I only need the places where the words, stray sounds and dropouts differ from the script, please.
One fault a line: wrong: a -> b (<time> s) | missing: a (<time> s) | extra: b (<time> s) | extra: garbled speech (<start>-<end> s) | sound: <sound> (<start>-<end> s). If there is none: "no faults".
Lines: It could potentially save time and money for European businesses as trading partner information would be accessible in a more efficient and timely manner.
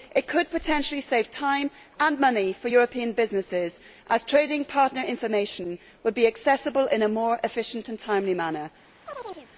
sound: chirp (9.1-9.5 s)